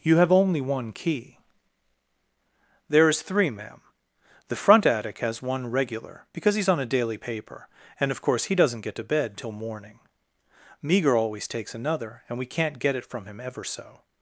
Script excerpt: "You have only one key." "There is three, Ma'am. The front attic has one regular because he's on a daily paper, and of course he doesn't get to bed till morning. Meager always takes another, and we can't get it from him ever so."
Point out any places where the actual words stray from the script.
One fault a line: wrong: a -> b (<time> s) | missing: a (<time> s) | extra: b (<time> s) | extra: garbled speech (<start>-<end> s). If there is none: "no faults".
no faults